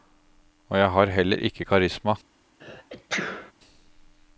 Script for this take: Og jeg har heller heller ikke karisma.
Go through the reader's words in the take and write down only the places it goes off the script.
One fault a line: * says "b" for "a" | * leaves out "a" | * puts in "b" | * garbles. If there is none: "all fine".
* leaves out "heller"